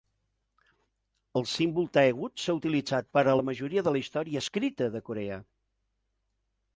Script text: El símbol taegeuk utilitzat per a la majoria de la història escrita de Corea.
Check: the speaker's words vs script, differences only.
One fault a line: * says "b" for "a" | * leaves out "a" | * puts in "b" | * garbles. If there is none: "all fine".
* puts in "s'ha"